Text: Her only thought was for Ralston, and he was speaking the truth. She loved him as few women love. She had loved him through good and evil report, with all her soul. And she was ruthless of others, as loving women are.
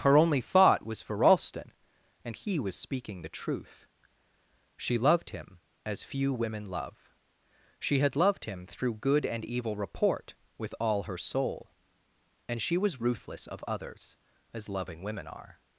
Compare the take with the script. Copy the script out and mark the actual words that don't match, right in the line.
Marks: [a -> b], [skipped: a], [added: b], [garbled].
Her only thought was for Ralston, and he was speaking the truth. She loved him as few women love. She had loved him through good and evil report, with all her soul. And she was ruthless of others, as loving women are.